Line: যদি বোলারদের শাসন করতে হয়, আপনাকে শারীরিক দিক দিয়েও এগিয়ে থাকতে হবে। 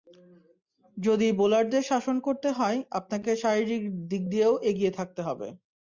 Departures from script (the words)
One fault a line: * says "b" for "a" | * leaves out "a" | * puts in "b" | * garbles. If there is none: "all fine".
all fine